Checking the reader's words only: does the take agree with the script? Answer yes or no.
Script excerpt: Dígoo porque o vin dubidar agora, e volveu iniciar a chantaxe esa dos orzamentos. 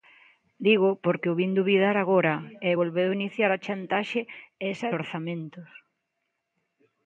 no